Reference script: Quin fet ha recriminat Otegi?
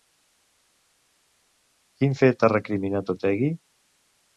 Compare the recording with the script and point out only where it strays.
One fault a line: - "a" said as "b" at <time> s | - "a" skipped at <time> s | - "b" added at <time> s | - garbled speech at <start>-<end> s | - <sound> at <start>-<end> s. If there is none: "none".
none